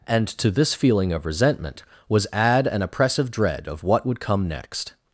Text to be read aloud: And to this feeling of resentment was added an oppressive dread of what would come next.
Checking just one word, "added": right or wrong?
wrong